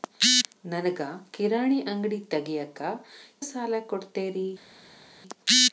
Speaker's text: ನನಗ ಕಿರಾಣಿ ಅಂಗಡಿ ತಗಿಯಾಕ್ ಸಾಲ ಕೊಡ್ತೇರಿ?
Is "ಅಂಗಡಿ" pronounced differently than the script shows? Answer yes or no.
no